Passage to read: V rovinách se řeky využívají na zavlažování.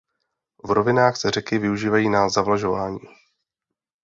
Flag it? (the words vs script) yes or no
no